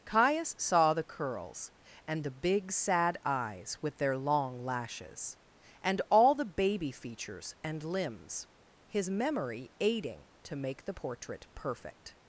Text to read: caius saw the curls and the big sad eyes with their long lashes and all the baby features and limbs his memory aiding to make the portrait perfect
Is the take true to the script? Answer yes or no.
yes